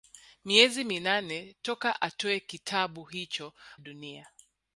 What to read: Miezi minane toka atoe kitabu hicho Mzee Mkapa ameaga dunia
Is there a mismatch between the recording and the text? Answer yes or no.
yes